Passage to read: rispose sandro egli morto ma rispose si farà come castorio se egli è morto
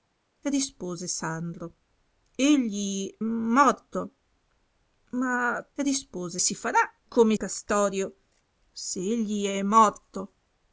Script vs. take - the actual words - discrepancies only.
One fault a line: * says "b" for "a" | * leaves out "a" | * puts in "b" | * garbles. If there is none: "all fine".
all fine